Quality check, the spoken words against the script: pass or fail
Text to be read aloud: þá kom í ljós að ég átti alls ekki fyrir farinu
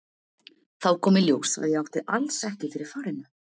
pass